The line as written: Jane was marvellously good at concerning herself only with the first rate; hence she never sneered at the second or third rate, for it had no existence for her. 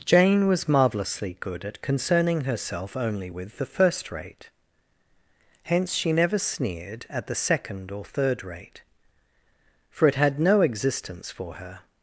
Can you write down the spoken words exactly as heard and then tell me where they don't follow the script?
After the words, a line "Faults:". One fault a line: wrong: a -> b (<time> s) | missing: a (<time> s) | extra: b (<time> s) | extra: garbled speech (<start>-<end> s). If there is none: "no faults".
Jane was marvellously good at concerning herself only with the first rate; hence she never sneered at the second or third rate, for it had no existence for her.
Faults:
no faults